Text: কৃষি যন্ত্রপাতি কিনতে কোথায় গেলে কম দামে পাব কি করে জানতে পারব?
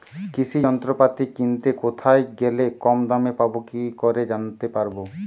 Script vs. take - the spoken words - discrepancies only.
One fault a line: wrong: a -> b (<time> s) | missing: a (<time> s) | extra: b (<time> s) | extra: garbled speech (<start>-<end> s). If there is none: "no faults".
no faults